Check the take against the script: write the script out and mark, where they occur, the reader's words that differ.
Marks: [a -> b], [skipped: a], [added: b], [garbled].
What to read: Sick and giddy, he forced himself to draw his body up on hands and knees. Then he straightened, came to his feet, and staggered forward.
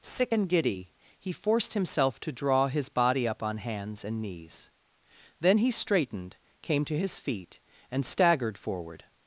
Sick and giddy, he forced himself to draw his body up on hands and knees. Then he straightened, came to his feet, and staggered forward.